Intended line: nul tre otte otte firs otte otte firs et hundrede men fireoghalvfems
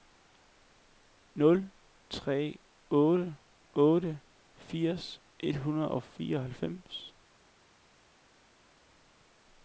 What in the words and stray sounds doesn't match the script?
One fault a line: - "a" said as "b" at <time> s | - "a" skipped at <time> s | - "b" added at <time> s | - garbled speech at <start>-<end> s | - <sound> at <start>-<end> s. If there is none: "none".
- "otte otte firs" skipped at 5.2 s
- "men" said as "og" at 5.9 s